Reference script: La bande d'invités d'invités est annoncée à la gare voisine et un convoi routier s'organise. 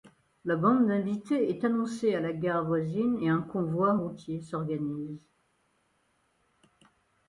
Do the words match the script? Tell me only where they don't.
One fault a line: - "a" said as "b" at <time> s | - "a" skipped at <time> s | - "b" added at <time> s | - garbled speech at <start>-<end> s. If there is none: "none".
- "d'invités" skipped at 1.5 s